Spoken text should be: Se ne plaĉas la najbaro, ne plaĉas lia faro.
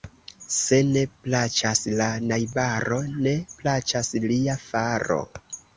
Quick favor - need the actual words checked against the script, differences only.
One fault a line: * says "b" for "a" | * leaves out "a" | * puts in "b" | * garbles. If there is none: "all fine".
all fine